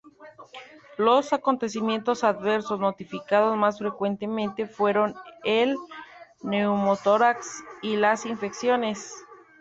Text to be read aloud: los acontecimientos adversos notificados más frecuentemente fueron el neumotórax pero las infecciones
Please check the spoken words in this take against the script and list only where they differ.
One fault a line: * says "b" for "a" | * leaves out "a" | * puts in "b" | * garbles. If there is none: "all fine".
* says "y" for "pero"